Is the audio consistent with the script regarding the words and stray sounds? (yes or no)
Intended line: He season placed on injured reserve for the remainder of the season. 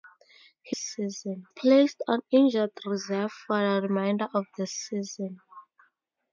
yes